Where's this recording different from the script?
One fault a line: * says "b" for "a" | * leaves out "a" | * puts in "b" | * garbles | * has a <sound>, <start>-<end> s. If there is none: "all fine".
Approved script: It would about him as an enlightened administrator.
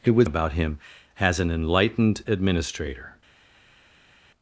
all fine